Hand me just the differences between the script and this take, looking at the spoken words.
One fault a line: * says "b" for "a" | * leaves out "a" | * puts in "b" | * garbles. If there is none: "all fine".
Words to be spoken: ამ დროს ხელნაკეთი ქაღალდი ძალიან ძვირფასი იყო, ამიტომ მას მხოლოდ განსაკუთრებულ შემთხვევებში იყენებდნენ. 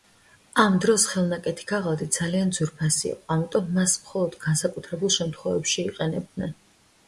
all fine